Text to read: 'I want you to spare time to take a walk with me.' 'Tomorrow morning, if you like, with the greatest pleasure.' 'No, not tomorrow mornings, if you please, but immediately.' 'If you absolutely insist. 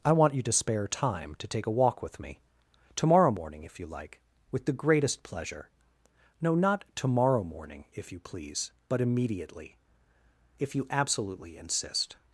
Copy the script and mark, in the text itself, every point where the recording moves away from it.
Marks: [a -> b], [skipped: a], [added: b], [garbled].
'I want you to spare time to take a walk with me.' 'Tomorrow morning, if you like, with the greatest pleasure.' 'No, not tomorrow [mornings, -> morning] if you please, but immediately.' 'If you absolutely insist.